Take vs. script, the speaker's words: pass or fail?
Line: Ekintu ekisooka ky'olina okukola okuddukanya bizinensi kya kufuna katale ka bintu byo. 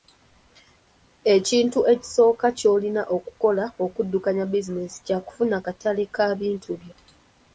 pass